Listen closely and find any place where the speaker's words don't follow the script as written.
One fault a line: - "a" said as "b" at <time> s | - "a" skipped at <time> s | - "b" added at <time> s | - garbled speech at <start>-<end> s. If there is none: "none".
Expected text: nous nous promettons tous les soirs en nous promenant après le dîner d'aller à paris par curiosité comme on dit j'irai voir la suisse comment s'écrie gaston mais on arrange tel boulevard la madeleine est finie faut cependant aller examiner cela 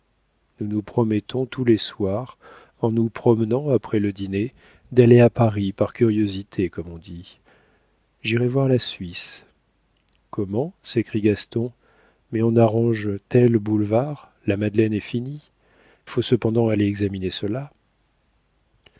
none